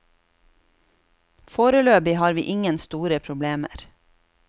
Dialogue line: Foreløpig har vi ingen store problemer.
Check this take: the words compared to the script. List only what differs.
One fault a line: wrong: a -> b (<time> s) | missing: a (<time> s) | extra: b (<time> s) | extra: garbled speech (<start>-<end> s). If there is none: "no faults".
no faults